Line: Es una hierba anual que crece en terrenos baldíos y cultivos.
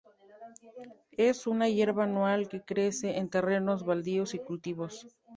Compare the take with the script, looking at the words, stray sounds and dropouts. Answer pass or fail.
pass